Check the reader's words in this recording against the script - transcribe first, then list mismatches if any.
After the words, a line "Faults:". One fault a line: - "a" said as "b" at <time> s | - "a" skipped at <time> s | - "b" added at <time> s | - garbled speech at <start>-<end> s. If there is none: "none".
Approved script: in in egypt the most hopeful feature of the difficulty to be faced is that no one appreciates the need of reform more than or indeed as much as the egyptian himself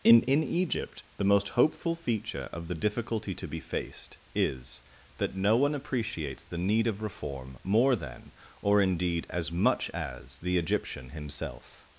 in in egypt the most hopeful feature of the difficulty to be faced is that no one appreciates the need of reform more than or indeed as much as the egyptian himself
Faults:
none